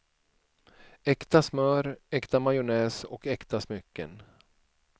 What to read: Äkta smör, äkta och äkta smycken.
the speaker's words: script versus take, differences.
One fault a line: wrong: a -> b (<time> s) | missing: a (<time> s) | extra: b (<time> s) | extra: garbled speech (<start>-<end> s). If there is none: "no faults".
extra: majonnäs (2.4 s)